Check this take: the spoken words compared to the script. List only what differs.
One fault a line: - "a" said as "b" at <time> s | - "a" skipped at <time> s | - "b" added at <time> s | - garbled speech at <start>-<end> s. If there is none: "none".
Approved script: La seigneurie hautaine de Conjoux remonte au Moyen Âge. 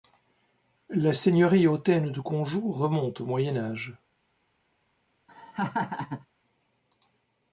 none